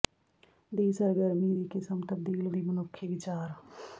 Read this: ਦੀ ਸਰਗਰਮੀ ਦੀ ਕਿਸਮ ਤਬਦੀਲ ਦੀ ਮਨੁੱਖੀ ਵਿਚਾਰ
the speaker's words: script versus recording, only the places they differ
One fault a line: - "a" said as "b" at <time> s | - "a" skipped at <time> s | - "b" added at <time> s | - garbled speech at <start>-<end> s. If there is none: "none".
none